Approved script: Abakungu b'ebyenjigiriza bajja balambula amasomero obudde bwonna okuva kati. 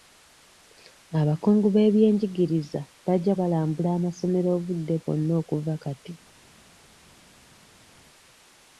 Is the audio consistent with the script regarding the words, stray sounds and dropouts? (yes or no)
yes